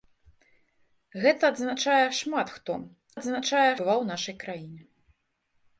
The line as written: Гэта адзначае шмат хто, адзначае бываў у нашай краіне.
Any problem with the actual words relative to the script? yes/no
no